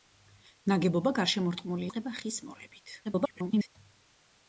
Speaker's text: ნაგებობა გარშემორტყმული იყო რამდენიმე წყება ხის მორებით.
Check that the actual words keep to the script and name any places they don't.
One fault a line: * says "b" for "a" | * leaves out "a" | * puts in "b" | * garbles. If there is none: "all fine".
* leaves out "იყო რამდენიმე"
* garbles